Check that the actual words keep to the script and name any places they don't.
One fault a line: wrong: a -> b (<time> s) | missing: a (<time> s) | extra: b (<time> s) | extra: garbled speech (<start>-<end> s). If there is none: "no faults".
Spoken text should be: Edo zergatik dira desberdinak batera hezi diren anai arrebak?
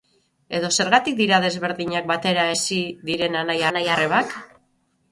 extra: anai (3.7 s)